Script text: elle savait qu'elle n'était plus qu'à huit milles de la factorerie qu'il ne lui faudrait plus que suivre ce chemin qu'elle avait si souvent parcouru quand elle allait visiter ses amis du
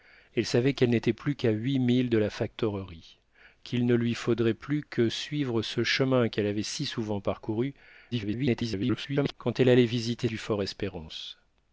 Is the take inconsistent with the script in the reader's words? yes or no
yes